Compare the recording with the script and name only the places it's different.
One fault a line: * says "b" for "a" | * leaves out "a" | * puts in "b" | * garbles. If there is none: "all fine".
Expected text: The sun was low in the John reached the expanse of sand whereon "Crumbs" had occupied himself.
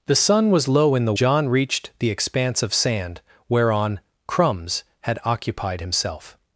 all fine